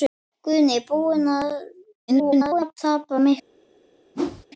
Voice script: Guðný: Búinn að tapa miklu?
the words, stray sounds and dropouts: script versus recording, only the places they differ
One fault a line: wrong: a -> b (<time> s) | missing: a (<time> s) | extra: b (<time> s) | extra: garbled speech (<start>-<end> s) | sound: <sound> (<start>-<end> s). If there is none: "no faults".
extra: garbled speech (2.1-2.7 s)
sound: whoosh (4.1-4.5 s)